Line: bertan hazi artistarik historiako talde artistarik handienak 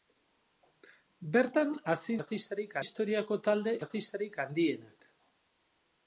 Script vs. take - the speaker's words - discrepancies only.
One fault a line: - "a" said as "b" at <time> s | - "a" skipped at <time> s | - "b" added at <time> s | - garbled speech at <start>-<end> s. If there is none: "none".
none